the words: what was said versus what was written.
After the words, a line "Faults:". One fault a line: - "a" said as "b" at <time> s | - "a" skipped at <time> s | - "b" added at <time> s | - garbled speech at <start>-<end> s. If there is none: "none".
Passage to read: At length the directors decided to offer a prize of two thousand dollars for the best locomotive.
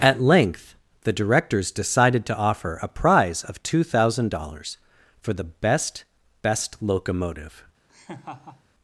At length the directors decided to offer a prize of two thousand dollars for the best best locomotive.
Faults:
- "best" added at 6.4 s